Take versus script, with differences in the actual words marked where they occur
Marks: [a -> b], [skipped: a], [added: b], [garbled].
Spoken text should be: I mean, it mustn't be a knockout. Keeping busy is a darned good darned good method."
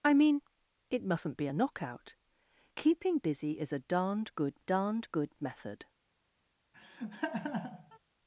I mean, it mustn't be a knockout. Keeping busy is a darned good darned good method."